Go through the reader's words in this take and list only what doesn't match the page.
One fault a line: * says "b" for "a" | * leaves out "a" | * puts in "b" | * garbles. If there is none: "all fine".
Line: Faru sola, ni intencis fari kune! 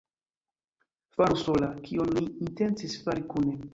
* puts in "kion"